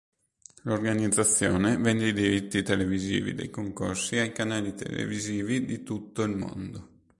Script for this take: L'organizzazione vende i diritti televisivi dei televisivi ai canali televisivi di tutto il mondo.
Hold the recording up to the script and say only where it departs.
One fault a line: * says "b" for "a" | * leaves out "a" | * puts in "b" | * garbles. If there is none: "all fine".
* says "concorsi" for "televisivi"